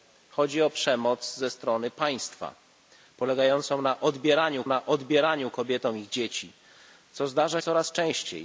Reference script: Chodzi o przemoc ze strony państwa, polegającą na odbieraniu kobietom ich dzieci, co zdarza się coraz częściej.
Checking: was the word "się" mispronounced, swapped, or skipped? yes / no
yes